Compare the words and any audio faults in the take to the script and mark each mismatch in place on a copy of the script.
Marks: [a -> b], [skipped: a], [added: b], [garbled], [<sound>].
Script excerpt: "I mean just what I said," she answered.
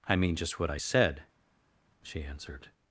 "I mean just what I said," she answered.